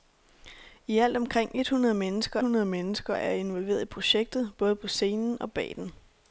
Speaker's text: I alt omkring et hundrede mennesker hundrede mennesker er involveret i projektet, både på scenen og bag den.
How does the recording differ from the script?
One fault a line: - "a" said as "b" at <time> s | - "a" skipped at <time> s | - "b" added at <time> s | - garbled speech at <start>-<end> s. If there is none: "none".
none